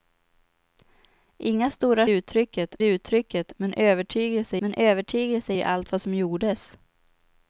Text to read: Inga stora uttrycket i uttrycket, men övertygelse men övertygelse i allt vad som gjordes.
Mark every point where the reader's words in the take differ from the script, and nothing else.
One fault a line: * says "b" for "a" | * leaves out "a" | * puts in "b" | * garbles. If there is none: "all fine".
all fine